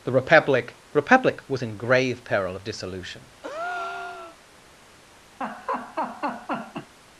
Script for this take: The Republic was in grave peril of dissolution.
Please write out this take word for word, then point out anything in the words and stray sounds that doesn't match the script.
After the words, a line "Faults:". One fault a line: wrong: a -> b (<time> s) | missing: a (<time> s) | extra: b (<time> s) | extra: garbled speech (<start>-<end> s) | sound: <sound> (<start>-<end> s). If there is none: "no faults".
The Republic Republic was in grave peril of dissolution.
Faults:
extra: Republic (0.9 s)
sound: breath (3.4-4.4 s)
sound: laugh (5.4-6.9 s)